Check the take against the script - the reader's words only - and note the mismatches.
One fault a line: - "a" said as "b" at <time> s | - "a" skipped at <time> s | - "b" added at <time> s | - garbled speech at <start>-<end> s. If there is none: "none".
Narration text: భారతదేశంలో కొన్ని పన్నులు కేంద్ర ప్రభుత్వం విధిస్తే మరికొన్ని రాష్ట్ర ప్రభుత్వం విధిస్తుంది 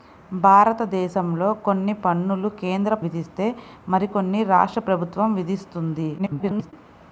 - "ప్రభుత్వం" skipped at 3.0 s
- garbled speech at 6.2-6.7 s